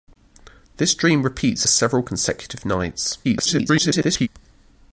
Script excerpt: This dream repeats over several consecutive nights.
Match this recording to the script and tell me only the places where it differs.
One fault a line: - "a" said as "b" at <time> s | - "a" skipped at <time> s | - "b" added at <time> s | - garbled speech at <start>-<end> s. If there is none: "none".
- "over" skipped at 1.7 s
- garbled speech at 3.2-4.3 s